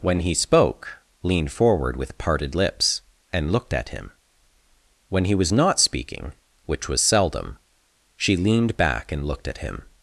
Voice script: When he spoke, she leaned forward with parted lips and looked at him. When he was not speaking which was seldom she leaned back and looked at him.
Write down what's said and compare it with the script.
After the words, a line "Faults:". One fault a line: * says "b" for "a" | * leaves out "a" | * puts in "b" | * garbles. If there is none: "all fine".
When he spoke, leaned forward with parted lips and looked at him. When he was not speaking which was seldom she leaned back and looked at him.
Faults:
* leaves out "she"